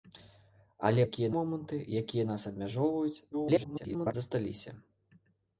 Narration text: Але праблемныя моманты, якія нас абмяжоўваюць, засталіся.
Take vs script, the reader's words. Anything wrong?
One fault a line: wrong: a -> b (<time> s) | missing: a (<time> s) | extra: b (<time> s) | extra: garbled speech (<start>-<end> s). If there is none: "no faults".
wrong: праблемныя -> якія (1.1 s)
extra: garbled speech (3.3-4.1 s)